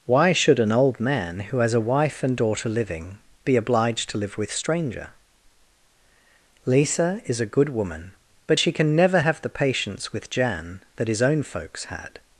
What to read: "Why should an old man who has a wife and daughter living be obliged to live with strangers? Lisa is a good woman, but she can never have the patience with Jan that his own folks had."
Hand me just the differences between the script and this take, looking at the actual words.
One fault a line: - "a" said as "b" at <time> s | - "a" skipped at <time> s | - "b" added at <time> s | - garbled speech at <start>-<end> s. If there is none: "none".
- "strangers" said as "stranger" at 4.5 s